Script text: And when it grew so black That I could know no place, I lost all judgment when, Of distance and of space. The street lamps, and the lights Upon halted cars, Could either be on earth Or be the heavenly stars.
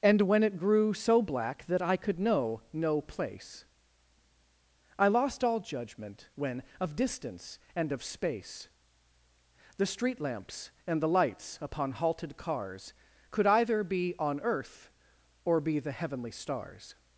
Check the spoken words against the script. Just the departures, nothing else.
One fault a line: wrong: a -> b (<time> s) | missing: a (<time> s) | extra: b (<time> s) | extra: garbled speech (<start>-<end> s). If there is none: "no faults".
no faults